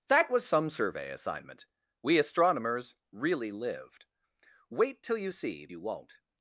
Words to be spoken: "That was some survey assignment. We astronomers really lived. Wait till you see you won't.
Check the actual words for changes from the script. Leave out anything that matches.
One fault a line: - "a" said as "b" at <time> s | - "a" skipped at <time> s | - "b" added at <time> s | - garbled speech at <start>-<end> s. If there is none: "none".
none